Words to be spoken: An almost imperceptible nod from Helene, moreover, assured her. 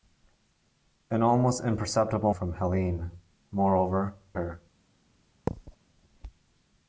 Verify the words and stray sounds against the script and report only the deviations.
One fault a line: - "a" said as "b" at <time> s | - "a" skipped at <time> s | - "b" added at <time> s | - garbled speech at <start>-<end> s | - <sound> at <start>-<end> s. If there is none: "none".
- "nod" skipped at 2.3 s
- "assured" skipped at 4.1 s
- thud at 5.5-5.8 s